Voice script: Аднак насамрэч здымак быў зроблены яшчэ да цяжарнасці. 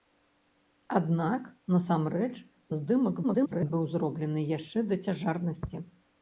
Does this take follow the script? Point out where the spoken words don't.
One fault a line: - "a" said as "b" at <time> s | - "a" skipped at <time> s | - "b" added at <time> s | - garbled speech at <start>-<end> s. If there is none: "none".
- garbled speech at 3.2-3.7 s